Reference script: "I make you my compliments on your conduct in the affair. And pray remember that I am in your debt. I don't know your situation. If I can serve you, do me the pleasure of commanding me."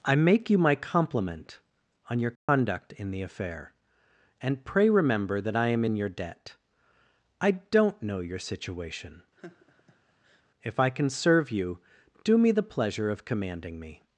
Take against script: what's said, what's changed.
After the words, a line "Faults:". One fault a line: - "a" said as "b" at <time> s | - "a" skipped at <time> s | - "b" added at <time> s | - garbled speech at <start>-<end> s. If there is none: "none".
"I make you my compliment on your conduct in the affair. And pray remember that I am in your debt. I don't know your situation. If I can serve you, do me the pleasure of commanding me."
Faults:
- "compliments" said as "compliment" at 0.8 s